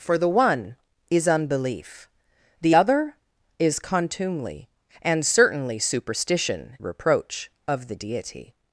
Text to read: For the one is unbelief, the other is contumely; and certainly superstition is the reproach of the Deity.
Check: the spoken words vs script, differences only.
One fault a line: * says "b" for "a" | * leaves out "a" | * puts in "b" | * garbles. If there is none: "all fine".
* leaves out "is the"